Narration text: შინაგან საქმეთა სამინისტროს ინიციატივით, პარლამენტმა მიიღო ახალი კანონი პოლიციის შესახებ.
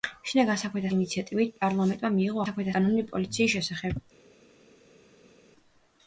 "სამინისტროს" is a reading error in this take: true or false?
true